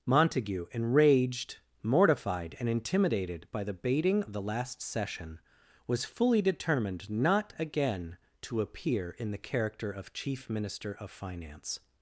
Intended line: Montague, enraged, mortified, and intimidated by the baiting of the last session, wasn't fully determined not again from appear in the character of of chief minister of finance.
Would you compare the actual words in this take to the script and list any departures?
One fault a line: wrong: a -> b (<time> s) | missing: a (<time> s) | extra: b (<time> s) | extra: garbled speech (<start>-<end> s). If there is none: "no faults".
wrong: wasn't -> was (5.9 s)
wrong: from -> to (8.4 s)
missing: of (10.1 s)